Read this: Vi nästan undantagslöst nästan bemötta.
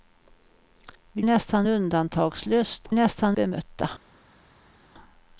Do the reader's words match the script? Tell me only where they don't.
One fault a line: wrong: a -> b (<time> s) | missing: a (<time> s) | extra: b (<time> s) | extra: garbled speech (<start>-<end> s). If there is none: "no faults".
no faults